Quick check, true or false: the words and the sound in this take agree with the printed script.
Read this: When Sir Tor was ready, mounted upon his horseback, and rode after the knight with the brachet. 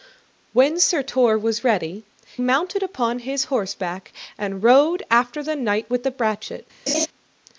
false